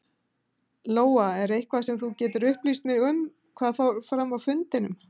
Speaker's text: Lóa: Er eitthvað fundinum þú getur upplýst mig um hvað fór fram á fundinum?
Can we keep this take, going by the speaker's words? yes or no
no